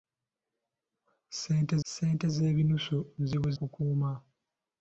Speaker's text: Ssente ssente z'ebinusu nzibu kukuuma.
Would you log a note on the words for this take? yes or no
no